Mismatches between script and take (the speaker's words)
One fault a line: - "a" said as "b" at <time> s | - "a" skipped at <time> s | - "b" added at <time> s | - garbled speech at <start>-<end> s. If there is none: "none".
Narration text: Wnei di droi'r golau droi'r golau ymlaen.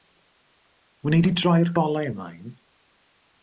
- "droi'r golau" skipped at 2.1 s